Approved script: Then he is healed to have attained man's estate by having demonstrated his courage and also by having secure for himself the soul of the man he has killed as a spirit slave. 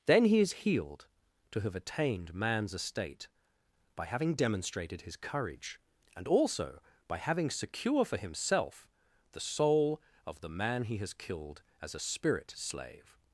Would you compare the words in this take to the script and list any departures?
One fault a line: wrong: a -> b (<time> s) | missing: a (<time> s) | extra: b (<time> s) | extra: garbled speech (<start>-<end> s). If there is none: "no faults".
no faults